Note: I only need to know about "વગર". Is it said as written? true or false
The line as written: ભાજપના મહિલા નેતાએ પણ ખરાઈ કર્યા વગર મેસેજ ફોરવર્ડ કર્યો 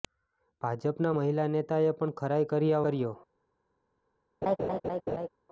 false